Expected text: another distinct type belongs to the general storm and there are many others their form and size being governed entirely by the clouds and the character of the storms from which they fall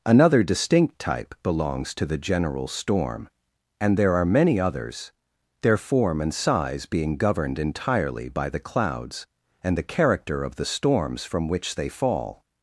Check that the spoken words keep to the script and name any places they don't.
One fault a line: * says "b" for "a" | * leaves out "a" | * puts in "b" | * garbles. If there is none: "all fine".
all fine